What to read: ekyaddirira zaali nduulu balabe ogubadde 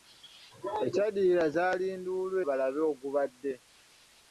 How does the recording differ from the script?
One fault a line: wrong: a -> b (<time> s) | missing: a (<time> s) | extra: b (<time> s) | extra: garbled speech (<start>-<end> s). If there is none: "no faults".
no faults